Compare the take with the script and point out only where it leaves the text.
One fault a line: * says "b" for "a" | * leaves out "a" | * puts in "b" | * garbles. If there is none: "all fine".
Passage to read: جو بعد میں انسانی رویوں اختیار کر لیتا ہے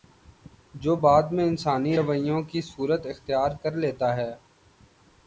* puts in "کی صورت"